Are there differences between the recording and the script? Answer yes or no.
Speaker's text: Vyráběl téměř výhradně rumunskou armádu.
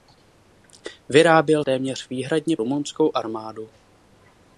no